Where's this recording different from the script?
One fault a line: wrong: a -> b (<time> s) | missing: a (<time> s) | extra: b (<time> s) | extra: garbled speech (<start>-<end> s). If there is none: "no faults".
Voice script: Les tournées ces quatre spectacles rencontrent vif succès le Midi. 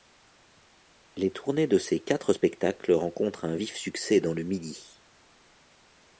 extra: de (1.7 s)
extra: un (3.4 s)
extra: dans (4.2 s)